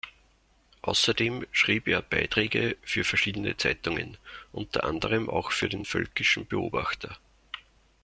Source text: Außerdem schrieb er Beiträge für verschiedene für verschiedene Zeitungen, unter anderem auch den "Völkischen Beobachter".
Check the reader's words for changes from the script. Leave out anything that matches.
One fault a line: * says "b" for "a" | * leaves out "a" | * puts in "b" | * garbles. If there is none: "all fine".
* leaves out "für verschiedene"
* puts in "für"